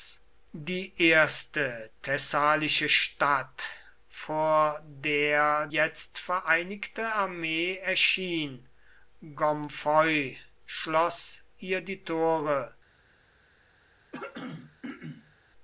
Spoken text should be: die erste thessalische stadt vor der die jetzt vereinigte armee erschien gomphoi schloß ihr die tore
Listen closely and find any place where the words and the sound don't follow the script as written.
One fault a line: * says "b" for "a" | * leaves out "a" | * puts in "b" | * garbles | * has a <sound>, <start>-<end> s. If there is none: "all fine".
* leaves out "die"
* has a throat clearing, 14.1-15.4 s